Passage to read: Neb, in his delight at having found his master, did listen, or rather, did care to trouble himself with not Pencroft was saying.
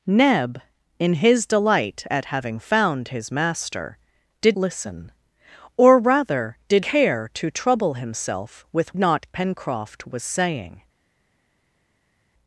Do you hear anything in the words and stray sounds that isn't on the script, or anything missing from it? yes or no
no